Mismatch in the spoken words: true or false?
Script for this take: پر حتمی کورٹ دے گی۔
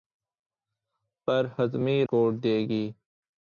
false